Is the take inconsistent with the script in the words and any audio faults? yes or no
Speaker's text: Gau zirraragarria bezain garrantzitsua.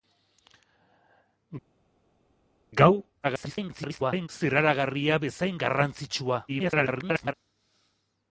yes